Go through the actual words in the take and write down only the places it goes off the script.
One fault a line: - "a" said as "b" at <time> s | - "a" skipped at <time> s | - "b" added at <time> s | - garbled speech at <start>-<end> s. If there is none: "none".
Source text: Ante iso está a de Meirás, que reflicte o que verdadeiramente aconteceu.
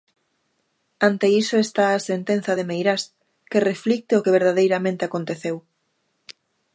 - "sentenza" added at 2.1 s